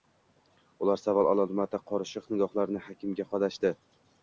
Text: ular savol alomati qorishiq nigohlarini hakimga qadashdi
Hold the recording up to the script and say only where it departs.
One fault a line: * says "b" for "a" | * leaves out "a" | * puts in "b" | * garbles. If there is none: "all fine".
all fine